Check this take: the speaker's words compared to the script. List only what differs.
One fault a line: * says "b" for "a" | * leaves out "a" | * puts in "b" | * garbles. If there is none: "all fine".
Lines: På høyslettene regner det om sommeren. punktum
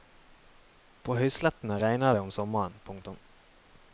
all fine